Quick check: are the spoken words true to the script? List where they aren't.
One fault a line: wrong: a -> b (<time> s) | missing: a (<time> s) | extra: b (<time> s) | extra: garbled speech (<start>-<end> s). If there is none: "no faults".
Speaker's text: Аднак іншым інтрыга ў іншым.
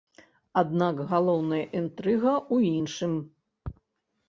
wrong: іншым -> галоўная (1.1 s)